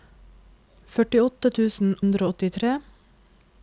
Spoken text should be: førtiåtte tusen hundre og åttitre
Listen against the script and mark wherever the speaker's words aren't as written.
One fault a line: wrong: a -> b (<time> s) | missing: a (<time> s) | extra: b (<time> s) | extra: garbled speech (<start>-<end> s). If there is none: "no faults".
no faults